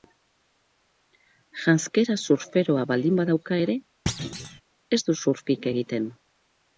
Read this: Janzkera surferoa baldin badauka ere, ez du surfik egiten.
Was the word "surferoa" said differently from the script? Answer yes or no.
no